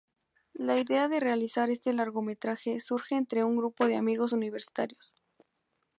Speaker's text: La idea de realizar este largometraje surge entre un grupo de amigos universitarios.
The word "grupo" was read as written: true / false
true